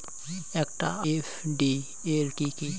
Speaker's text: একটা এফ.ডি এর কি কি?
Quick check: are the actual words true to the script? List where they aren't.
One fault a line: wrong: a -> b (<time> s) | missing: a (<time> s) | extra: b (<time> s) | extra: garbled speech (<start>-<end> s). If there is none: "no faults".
no faults